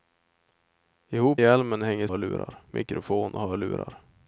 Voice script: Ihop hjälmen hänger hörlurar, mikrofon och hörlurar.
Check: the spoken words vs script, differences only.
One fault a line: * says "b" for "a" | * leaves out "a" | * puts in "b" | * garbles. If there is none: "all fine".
all fine